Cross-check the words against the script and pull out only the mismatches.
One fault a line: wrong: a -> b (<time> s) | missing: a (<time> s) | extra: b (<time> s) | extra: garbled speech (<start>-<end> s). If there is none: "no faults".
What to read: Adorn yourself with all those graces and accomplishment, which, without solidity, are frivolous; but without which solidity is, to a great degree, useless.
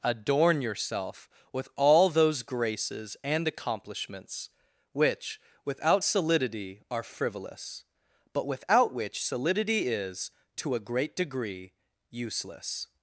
wrong: accomplishment -> accomplishments (3.5 s)